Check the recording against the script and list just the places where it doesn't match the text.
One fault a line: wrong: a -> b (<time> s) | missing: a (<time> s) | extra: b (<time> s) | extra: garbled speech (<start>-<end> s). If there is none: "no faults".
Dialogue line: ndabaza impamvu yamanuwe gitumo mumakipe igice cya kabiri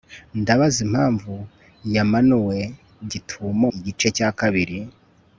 missing: mumakipe (3.7 s)